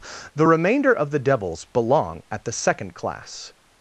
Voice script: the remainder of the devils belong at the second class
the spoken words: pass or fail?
pass